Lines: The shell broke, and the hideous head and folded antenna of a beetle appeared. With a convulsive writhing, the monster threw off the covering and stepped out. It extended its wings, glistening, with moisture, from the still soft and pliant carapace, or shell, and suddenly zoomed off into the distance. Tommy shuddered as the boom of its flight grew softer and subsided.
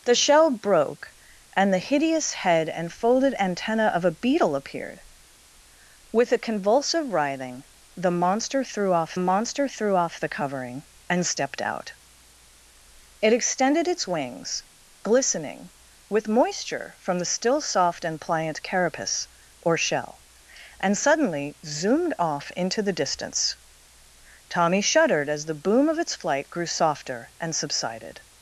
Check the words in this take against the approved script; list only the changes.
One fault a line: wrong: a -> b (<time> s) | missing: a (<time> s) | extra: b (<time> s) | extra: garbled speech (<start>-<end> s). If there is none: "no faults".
extra: monster threw off (9.2 s)